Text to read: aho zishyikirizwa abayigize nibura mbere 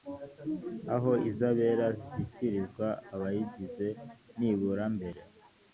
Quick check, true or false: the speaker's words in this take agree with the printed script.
false